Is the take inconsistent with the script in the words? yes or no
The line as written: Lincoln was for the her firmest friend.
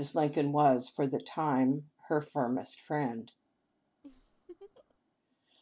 yes